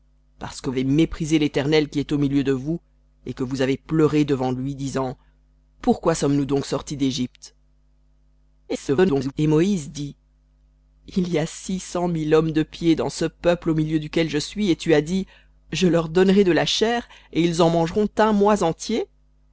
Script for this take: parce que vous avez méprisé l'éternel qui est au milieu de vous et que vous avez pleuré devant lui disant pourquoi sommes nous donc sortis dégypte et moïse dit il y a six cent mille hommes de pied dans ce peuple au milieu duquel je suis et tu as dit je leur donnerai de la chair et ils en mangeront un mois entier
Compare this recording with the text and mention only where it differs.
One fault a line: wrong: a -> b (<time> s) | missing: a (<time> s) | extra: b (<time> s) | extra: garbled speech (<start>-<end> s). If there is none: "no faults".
missing: vous (0.7 s)
extra: garbled speech (8.7-9.3 s)